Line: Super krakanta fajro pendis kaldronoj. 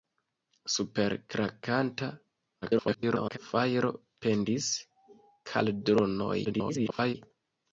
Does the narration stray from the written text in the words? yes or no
yes